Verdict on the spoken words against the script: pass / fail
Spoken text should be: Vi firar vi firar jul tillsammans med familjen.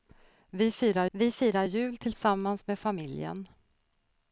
pass